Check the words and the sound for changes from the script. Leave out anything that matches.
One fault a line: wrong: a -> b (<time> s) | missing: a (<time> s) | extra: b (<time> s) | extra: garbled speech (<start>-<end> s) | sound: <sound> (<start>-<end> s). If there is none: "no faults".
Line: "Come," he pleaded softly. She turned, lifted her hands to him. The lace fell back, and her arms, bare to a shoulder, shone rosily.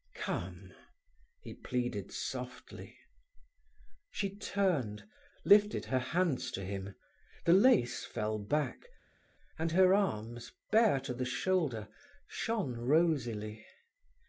wrong: a -> the (11.1 s)